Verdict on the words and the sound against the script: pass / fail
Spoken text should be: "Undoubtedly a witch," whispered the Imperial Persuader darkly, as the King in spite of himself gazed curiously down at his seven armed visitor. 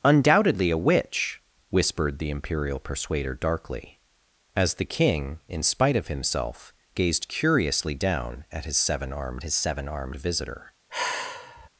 fail